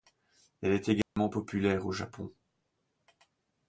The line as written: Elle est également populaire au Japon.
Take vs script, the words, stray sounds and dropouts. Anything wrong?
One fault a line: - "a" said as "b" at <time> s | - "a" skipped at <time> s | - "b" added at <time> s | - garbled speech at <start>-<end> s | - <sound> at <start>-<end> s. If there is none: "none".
- dropout at 1.0-1.2 s